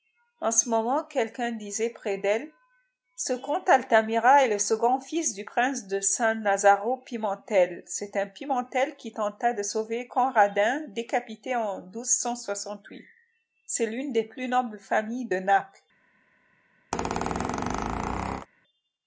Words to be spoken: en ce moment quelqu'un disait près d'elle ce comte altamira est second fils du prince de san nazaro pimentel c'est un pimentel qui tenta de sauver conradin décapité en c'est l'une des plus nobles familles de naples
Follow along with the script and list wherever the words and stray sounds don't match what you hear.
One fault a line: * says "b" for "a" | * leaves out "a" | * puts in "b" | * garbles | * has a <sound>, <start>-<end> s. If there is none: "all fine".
* puts in "le"
* has a squeak, 16.9-18.5 s